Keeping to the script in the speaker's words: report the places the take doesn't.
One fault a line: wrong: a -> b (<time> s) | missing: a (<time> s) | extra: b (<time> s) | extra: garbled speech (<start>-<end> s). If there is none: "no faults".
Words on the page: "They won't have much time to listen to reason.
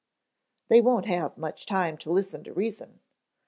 no faults